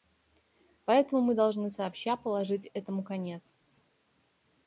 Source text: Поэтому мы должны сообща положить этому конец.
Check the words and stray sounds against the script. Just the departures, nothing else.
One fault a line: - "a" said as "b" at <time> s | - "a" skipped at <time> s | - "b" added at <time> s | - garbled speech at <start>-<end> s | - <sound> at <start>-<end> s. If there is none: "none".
none